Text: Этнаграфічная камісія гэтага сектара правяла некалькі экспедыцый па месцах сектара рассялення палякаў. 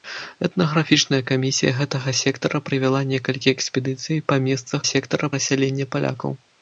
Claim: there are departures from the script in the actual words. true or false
false